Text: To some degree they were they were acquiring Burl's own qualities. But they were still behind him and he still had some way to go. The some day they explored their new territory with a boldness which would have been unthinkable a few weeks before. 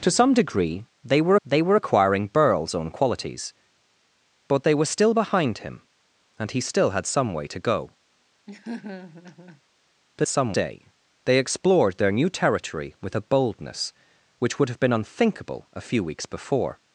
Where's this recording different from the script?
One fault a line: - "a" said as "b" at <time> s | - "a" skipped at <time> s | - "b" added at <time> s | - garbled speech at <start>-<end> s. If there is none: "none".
none